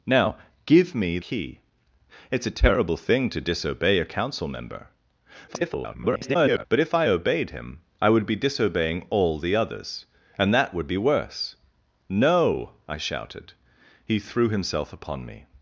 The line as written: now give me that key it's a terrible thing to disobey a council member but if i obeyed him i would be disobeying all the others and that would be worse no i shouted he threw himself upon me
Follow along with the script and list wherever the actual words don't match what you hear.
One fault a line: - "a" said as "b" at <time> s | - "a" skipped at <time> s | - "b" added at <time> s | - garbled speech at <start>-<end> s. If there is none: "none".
- "that" skipped at 1.2 s
- garbled speech at 5.5-6.7 s